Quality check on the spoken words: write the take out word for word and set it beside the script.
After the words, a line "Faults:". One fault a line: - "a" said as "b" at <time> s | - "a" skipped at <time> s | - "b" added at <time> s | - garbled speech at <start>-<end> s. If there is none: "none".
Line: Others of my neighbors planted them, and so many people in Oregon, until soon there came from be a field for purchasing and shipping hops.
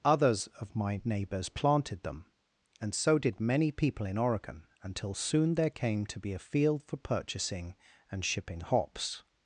Others of my neighbors planted them, and so did many people in Oregon, until soon there came to be a field for purchasing and shipping hops.
Faults:
- "did" added at 3.2 s
- "from" said as "to" at 6.1 s